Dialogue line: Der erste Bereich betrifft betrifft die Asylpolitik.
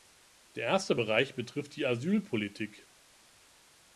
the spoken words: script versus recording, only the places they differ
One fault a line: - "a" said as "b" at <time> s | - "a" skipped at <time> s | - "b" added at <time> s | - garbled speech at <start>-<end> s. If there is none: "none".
- "betrifft" skipped at 1.7 s